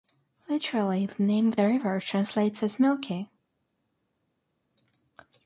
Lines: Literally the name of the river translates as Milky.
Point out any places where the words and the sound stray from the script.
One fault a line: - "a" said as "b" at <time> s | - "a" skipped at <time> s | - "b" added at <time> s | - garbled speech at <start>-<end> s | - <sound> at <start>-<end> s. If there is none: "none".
none